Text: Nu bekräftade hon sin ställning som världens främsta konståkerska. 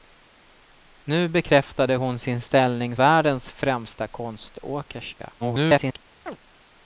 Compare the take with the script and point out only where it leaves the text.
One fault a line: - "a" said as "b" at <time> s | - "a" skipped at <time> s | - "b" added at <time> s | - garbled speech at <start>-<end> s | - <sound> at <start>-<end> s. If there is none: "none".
- "som" skipped at 3.0 s
- garbled speech at 5.4-6.0 s
- chirp at 6.3-6.4 s